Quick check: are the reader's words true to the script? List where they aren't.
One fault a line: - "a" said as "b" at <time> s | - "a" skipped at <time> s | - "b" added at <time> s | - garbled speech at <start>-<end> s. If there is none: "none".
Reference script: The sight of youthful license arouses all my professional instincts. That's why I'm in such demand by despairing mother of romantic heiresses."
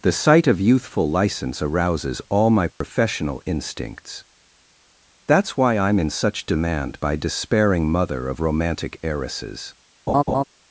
none